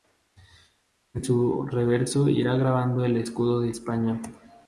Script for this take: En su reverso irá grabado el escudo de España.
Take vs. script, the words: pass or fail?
pass